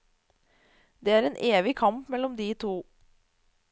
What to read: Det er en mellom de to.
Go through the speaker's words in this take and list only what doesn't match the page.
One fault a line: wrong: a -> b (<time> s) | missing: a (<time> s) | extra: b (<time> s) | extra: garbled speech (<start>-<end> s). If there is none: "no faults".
extra: evig kamp (1.4 s)